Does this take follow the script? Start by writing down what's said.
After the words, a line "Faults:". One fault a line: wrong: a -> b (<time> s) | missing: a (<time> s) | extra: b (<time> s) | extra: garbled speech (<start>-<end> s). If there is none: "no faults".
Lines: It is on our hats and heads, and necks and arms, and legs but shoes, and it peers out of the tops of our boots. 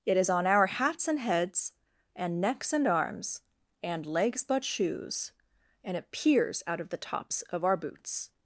It is on our hats and heads, and necks and arms, and legs but shoes, and it peers out of the tops of our boots.
Faults:
no faults